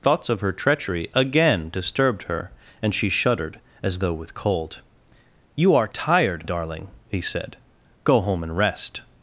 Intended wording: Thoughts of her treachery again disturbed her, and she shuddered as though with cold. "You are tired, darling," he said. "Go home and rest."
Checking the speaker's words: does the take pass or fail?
pass